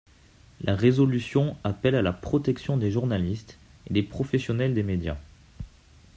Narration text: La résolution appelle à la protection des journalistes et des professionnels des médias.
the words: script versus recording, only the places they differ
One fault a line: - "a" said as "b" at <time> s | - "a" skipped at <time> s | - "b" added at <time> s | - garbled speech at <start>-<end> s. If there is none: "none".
none